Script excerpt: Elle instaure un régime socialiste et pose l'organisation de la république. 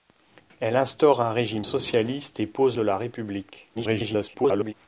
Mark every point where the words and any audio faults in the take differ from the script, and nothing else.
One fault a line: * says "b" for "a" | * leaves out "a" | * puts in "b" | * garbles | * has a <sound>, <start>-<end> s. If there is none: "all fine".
* leaves out "l'organisation"
* garbles